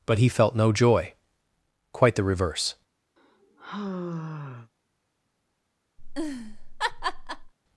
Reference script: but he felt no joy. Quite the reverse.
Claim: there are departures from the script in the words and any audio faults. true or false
true